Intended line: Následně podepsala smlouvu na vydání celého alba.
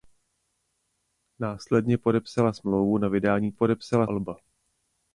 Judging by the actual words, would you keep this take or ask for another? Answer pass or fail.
fail